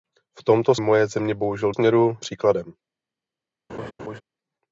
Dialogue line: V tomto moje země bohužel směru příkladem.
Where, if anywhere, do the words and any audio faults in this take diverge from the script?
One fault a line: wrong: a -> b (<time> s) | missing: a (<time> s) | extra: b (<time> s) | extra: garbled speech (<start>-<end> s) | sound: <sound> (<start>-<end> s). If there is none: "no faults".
sound: laugh (3.7-4.2 s)